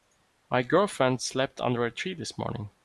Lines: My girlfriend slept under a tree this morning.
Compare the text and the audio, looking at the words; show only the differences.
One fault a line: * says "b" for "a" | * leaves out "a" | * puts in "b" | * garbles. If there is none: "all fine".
all fine